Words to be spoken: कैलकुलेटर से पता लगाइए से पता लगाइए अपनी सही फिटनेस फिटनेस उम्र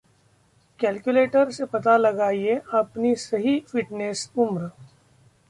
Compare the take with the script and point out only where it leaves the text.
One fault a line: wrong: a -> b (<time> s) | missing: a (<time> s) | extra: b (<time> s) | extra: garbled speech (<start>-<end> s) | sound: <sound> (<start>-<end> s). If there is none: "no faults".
missing: से पता लगाइए (2.5 s)
missing: फिटनेस (4.3 s)